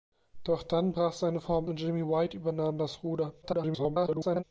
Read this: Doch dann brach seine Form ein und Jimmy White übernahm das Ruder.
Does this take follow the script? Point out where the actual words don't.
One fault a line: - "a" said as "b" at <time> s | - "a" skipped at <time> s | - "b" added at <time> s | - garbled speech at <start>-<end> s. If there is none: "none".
- "ein" skipped at 1.7 s
- garbled speech at 3.4-4.4 s